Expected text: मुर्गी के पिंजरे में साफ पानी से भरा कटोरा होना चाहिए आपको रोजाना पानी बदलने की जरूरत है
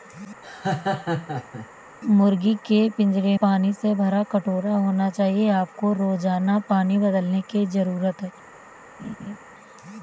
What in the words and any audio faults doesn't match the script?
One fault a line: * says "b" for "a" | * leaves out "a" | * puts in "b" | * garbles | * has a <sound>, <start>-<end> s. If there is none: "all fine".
* has a laugh, 0.4-1.7 s
* leaves out "में साफ"
* has a laugh, 9.0-9.4 s